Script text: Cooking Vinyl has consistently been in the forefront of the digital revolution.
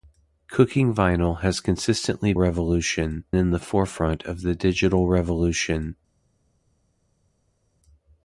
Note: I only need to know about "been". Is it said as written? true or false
false